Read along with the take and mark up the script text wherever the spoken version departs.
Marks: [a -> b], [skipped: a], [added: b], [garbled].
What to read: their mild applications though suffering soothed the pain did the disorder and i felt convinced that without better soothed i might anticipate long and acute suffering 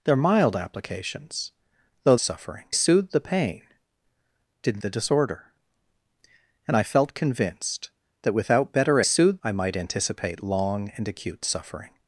their mild applications though suffering soothed the pain did the disorder and i felt convinced that without better soothed i might anticipate long and acute suffering